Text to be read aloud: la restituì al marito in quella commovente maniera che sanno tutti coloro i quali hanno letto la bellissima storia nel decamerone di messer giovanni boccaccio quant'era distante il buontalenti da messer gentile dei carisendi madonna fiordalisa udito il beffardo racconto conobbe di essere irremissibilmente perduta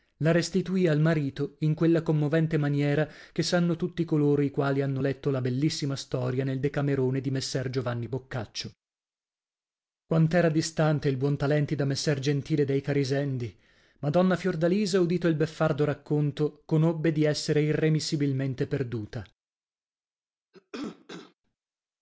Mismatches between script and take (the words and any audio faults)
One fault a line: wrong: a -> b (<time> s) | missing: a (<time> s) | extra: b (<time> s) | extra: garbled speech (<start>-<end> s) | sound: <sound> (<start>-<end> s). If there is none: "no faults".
sound: cough (20.5-21.3 s)